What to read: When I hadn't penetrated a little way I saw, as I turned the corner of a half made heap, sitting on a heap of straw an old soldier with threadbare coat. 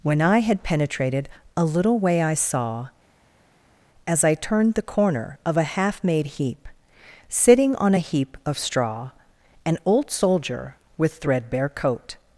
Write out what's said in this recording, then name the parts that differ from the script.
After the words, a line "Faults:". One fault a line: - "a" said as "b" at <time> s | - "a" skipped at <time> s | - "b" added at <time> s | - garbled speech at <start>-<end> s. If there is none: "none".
When I had penetrated a little way I saw, as I turned the corner of a half made heap, sitting on a heap of straw an old soldier with threadbare coat.
Faults:
- "hadn't" said as "had" at 0.4 s